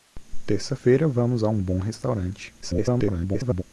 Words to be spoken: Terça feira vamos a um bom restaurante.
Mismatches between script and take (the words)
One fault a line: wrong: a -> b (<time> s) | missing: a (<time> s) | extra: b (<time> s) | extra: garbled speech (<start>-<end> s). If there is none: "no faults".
extra: garbled speech (2.6-3.6 s)